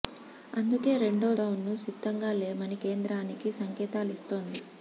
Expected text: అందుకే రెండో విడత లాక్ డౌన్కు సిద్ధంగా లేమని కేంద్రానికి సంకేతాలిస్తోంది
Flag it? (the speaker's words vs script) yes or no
yes